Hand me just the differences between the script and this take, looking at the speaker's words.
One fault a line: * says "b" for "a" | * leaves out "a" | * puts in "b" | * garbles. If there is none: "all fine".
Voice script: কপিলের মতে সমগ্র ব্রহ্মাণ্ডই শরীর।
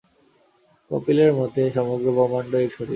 all fine